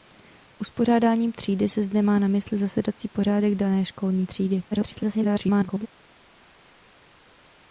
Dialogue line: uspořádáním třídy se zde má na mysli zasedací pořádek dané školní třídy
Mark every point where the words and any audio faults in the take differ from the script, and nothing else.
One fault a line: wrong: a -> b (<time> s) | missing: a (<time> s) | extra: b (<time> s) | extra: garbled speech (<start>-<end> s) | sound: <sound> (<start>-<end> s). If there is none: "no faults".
extra: garbled speech (4.7-5.9 s)